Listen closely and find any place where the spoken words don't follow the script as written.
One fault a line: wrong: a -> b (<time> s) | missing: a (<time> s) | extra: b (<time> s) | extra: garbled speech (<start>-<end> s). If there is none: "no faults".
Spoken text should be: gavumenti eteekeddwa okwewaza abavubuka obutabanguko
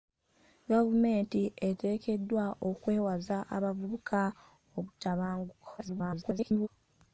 extra: garbled speech (5.8-6.7 s)